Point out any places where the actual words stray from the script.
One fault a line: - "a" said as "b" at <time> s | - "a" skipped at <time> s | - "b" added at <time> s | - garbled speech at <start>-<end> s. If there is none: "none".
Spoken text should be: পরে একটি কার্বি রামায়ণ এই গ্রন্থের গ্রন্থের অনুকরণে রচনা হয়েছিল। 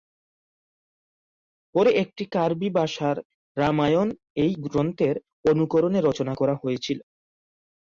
- "ভাষার" added at 2.7 s
- "গ্রন্থের" skipped at 5.2 s
- "করা" added at 6.3 s